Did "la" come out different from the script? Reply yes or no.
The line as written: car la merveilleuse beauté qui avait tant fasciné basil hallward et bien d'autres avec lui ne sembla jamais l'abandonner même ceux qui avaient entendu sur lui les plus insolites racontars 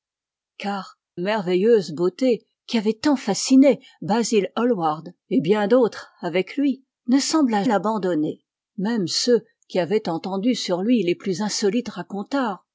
yes